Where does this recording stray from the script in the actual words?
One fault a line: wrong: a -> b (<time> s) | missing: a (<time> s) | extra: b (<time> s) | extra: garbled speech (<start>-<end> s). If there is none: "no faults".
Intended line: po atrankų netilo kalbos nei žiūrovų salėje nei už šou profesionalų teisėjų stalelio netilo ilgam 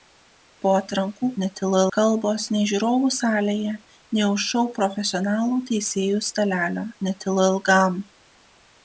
no faults